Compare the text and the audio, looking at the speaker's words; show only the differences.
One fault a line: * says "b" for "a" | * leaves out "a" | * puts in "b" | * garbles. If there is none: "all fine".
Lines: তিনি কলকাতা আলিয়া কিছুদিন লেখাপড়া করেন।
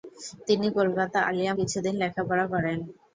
all fine